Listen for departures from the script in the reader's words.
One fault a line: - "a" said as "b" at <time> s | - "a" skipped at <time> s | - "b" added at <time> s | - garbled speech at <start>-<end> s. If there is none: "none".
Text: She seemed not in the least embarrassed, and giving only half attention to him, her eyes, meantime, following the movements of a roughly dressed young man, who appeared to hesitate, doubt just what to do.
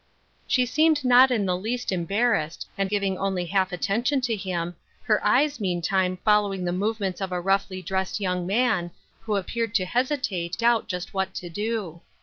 none